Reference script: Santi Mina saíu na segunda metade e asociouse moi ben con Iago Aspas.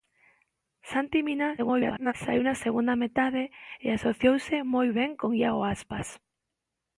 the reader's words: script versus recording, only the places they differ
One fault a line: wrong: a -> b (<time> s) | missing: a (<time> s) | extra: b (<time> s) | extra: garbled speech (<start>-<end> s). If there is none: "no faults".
extra: garbled speech (1.6-2.1 s)